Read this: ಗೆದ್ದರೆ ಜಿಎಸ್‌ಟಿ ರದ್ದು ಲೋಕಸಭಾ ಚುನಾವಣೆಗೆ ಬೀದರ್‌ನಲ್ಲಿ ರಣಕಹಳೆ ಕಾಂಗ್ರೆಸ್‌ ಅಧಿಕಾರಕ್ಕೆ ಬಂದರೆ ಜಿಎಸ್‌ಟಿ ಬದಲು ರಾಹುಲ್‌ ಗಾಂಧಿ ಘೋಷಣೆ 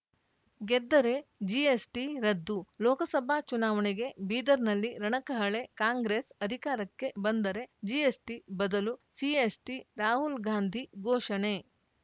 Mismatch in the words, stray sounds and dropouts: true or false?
true